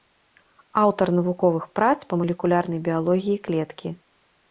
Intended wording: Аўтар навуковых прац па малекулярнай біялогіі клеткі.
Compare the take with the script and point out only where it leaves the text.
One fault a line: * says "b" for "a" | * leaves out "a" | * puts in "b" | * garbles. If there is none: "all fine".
all fine